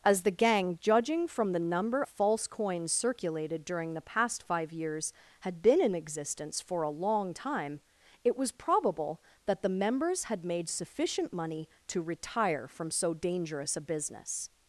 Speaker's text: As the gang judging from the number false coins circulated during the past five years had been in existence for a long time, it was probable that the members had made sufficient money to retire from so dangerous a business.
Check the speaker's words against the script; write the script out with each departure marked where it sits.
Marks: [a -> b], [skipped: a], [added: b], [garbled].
As the gang judging from the number false coins circulated during the past five years had been in existence for a long time, it was probable that the members had made sufficient money to retire from so dangerous a business.